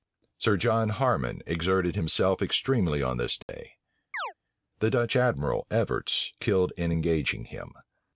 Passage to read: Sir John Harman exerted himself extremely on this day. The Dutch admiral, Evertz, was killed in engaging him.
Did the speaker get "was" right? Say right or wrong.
wrong